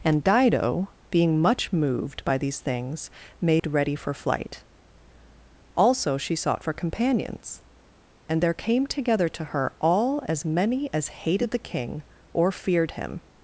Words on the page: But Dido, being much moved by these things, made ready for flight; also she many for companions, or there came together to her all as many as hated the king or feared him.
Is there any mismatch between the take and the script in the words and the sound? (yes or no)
yes